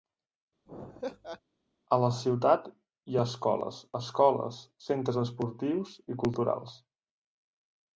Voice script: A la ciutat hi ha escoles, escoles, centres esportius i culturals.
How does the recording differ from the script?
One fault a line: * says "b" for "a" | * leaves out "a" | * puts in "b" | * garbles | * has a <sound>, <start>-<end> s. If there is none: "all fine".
* has a laugh, 0.7-1.4 s